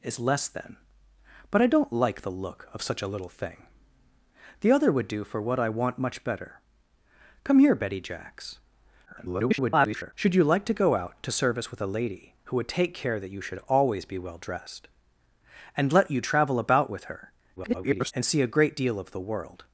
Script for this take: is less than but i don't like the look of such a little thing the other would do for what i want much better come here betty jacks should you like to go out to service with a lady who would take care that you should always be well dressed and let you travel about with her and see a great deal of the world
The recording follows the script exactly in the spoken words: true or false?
false